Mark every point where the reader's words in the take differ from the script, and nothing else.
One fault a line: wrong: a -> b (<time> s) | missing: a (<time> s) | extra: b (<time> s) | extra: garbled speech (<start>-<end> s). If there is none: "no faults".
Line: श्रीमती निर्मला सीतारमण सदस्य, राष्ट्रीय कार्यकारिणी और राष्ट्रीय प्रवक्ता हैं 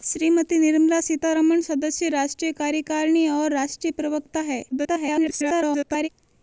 extra: garbled speech (4.7-6.1 s)